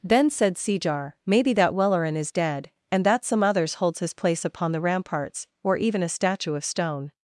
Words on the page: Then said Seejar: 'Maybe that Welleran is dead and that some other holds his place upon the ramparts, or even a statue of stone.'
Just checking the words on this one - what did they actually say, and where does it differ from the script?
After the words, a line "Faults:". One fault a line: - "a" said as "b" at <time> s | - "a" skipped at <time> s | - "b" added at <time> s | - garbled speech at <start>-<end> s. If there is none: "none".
Then said Seejar: 'Maybe that Welleran is dead and that some others holds his place upon the ramparts, or even a statue of stone.'
Faults:
- "other" said as "others" at 3.4 s